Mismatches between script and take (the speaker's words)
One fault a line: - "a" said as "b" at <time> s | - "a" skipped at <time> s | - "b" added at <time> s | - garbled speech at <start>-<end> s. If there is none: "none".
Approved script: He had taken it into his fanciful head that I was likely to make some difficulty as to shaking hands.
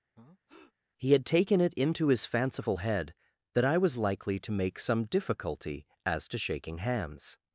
none